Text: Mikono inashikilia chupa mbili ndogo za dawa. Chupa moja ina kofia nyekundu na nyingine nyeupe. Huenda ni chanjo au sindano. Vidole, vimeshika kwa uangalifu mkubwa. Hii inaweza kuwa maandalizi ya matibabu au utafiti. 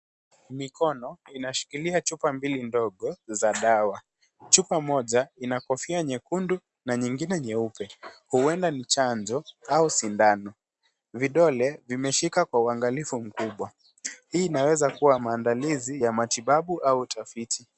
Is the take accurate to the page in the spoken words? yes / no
yes